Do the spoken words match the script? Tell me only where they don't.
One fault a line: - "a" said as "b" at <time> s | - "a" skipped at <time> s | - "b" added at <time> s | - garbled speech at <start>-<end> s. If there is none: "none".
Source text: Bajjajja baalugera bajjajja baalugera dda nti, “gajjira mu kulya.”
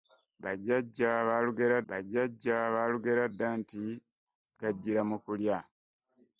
none